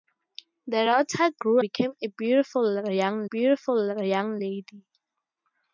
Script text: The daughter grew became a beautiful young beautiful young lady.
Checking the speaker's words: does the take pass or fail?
pass